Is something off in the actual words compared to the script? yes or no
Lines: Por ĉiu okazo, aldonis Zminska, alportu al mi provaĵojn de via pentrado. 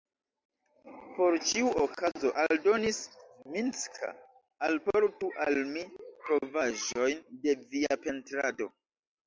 no